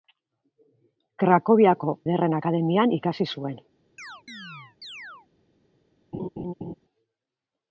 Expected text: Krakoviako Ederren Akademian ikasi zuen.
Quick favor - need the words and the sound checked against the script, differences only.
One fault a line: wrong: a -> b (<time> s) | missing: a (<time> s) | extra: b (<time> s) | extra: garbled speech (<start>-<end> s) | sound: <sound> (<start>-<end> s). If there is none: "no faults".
sound: chirp (4.0-5.3 s)
sound: laugh (6.1-6.8 s)